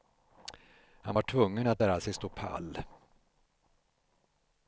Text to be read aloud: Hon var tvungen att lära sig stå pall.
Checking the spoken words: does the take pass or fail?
fail